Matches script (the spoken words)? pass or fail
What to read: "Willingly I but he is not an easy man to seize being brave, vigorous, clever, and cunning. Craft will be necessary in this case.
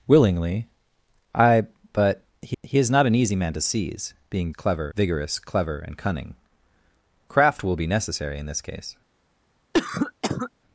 fail